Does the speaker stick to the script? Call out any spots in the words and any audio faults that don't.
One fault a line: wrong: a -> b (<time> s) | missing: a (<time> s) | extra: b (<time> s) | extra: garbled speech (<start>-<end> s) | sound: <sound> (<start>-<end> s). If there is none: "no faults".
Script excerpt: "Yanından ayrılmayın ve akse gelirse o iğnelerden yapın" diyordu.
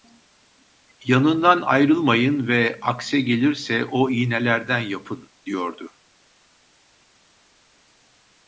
no faults